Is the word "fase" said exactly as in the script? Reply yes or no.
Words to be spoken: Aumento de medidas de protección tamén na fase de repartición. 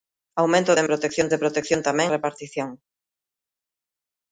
no